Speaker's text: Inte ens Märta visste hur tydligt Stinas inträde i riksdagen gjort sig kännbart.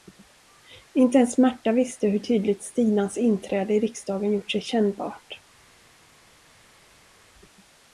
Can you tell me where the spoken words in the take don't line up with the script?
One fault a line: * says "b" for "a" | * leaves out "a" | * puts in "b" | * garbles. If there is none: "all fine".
all fine